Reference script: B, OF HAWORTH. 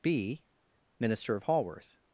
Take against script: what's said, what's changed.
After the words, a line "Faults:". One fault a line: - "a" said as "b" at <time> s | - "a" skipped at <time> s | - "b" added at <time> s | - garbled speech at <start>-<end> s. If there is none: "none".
B, MINISTER OF HAWORTH.
Faults:
- "MINISTER" added at 1.0 s